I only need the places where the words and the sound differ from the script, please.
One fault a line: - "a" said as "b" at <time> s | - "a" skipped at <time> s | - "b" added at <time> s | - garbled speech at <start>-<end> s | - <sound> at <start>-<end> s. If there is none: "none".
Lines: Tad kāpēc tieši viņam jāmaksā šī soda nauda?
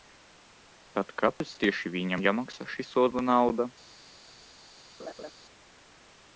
- dropout at 1.4-1.4 s
- laugh at 5.0-5.3 s